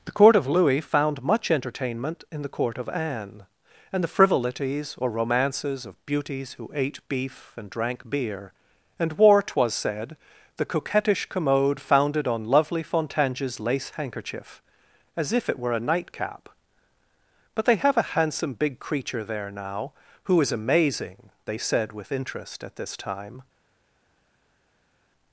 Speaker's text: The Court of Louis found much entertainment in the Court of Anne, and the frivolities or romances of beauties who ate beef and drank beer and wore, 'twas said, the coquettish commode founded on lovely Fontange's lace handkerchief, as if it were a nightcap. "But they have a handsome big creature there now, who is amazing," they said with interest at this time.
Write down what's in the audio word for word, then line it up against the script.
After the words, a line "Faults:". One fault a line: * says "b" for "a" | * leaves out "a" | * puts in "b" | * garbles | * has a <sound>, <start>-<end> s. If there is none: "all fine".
The Court of Louis found much entertainment in the Court of Anne, and the frivolities or romances of beauties who ate beef and drank beer and wore, 'twas said, the coquettish commode founded on lovely Fontange's lace handkerchief, as if it were a nightcap. "But they have a handsome big creature there now, who is amazing," they said with interest at this time.
Faults:
all fine